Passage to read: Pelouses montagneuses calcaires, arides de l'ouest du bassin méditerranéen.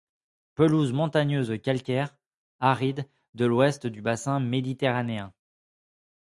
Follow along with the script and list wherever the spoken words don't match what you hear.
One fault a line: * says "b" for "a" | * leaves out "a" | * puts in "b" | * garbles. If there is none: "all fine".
all fine